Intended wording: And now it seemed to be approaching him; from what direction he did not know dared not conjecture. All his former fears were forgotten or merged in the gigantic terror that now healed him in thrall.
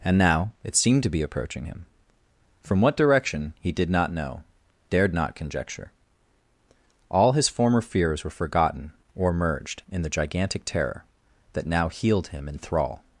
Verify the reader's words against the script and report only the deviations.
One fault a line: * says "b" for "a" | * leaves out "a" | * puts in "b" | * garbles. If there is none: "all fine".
all fine